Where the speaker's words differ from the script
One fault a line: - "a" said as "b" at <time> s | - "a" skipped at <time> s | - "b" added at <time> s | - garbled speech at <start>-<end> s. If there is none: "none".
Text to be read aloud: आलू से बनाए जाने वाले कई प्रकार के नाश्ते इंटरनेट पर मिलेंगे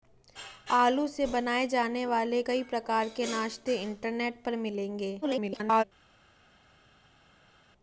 - garbled speech at 5.2-5.8 s